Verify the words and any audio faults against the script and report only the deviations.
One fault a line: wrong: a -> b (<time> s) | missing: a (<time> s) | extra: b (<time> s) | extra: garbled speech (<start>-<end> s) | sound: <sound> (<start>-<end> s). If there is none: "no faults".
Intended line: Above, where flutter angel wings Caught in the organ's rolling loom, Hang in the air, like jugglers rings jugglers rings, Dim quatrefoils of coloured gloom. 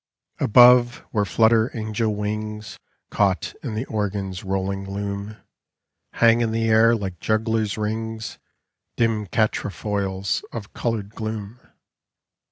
missing: jugglers rings (8.4 s)